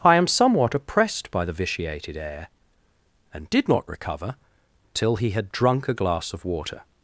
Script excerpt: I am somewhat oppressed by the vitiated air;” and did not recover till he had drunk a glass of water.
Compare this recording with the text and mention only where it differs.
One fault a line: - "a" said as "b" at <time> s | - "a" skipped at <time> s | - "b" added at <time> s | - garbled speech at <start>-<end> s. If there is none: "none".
none